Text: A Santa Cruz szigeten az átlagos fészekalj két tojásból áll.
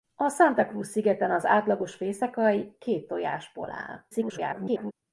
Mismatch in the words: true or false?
true